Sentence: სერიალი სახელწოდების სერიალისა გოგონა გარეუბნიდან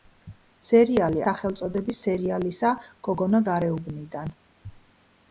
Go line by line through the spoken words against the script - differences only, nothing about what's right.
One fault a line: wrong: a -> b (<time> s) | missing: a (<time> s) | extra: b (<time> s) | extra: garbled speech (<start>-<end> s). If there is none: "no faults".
no faults